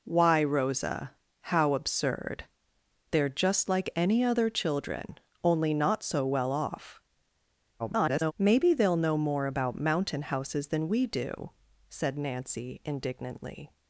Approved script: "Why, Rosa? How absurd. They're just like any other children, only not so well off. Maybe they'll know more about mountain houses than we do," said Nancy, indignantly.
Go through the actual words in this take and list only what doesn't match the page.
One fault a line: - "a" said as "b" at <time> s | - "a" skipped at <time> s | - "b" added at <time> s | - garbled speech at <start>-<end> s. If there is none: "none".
- garbled speech at 7.8-8.3 s